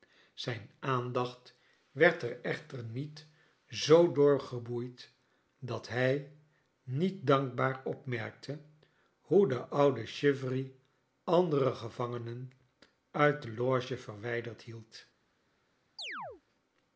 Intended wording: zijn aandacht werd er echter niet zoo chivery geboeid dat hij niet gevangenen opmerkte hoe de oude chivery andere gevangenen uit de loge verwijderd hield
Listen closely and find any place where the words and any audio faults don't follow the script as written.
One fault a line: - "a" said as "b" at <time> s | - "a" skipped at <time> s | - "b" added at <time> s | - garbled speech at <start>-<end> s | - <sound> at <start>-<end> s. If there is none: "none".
- "chivery" said as "door" at 4.1 s
- "gevangenen" said as "dankbaar" at 7.3 s
- chirp at 16.0-16.4 s